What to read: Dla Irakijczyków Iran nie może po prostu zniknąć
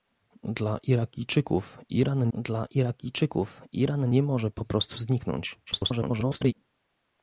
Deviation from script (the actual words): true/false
true